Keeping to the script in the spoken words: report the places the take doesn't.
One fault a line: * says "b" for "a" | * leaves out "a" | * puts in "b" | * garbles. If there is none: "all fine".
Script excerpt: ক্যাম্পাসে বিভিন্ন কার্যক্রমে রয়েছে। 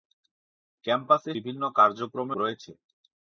all fine